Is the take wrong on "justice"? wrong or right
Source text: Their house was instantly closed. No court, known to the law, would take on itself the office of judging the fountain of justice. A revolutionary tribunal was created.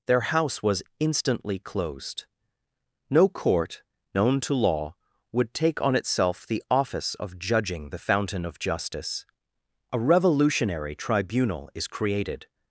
right